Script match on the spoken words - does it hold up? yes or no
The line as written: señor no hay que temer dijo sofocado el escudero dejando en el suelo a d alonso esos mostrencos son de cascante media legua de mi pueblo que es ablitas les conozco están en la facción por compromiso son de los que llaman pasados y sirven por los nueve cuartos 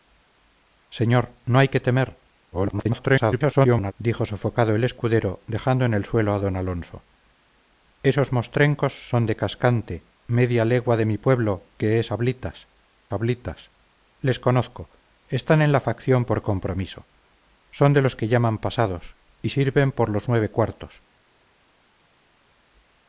no